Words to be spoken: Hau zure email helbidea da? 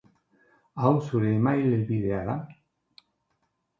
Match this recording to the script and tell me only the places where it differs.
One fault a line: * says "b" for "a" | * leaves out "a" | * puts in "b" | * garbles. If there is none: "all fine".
all fine